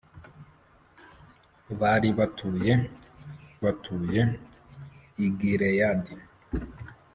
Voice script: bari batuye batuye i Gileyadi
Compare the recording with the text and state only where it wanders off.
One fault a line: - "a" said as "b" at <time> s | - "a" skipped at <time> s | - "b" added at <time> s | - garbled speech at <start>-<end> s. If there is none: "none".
none